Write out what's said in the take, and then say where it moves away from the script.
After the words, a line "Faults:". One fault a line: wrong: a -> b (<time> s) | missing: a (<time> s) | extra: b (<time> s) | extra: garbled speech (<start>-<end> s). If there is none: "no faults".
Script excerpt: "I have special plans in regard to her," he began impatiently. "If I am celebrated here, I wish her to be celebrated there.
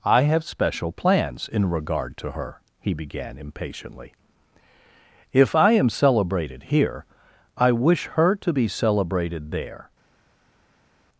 "I have special plans in regard to her," he began impatiently. "If I am celebrated here, I wish her to be celebrated there.
Faults:
no faults